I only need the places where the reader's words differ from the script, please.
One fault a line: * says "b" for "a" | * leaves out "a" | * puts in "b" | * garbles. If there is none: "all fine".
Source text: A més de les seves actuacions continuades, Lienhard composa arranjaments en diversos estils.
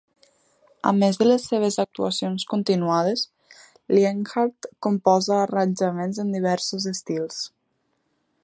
all fine